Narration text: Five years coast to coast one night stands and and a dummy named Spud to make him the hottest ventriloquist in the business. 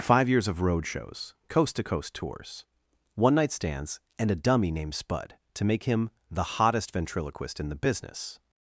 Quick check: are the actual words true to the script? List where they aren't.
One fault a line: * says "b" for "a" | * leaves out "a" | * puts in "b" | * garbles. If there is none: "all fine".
* puts in "of road shows"
* puts in "tours"
* leaves out "and"